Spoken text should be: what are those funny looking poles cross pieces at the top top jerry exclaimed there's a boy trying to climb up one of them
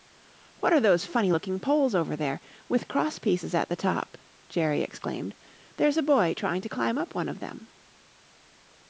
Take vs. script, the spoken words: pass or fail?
fail